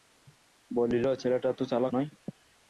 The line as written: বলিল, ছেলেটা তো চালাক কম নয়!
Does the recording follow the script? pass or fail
fail